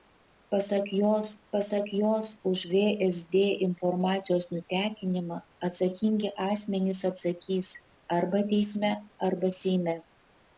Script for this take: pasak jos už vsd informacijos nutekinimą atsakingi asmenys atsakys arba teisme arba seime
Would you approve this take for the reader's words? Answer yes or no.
no